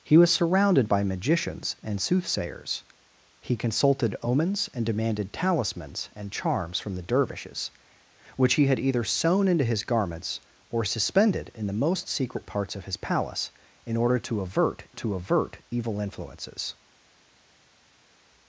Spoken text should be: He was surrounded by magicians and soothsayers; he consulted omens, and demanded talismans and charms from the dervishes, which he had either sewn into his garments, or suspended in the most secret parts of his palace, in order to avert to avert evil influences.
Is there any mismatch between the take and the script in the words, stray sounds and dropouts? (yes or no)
no